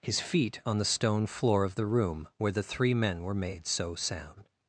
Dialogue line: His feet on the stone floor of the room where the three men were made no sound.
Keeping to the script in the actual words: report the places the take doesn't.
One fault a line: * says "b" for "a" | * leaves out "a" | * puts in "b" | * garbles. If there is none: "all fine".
* says "so" for "no"